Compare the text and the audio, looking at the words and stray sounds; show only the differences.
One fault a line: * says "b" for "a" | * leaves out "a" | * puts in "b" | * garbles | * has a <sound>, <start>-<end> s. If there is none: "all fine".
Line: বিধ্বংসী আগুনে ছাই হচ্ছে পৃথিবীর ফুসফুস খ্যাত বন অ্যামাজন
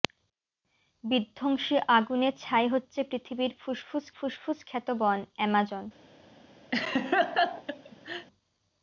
* puts in "ফুসফুস"
* has a laugh, 6.7-8.3 s